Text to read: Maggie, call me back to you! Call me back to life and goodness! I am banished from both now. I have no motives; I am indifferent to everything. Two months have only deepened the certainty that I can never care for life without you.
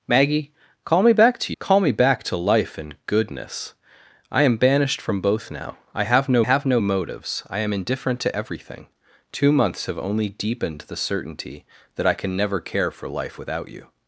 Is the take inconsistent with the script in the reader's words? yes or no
yes